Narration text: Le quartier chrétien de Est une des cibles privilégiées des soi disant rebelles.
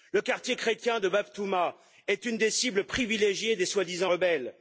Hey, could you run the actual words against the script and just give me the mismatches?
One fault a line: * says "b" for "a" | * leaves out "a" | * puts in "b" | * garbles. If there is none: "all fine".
* puts in "Bab Touma"